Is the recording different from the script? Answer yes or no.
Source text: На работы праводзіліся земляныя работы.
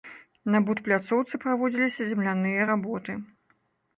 yes